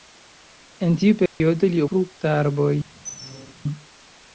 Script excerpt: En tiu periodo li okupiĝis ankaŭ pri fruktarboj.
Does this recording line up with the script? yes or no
no